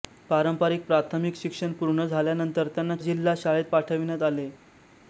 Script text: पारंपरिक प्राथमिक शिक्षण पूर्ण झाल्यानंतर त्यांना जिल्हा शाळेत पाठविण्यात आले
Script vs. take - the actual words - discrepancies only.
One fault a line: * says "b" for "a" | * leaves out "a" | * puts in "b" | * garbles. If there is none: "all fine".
all fine